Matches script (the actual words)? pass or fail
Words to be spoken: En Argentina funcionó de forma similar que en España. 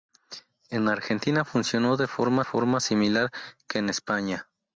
fail